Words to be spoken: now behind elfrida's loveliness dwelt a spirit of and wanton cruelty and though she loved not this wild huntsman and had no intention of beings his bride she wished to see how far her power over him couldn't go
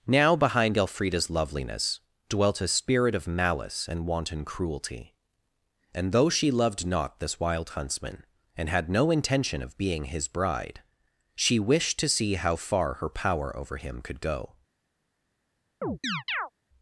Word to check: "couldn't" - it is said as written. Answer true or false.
false